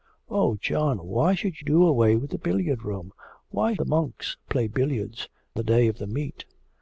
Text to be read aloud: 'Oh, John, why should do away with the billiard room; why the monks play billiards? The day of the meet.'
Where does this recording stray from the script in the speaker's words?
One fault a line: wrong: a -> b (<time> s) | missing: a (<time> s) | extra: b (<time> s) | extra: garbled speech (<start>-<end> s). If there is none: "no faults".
no faults